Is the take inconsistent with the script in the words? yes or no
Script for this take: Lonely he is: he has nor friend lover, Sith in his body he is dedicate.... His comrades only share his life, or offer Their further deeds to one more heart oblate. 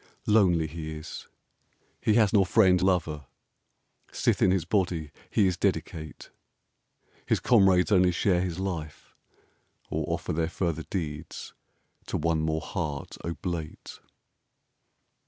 no